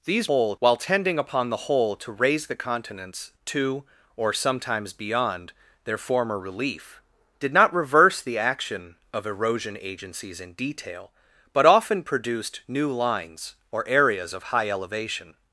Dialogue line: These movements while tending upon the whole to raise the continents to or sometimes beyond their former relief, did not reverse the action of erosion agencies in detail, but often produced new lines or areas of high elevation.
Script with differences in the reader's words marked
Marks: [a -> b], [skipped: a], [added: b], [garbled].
These [movements -> whole] while tending upon the whole to raise the continents to or sometimes beyond their former relief, did not reverse the action of erosion agencies in detail, but often produced new lines or areas of high elevation.